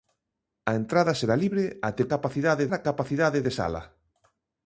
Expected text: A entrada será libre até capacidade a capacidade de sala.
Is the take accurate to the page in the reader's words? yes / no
yes